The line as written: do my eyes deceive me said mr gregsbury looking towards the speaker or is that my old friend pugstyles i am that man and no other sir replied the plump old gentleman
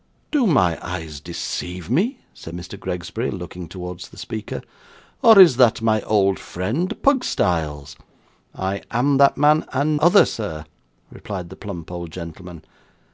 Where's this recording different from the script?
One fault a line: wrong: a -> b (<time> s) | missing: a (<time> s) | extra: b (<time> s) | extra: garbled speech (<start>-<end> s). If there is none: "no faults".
missing: no (10.0 s)